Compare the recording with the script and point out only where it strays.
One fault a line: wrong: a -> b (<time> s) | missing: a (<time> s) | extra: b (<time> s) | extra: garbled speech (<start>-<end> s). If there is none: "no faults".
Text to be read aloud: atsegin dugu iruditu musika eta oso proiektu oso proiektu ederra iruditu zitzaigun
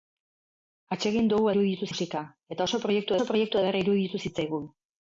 no faults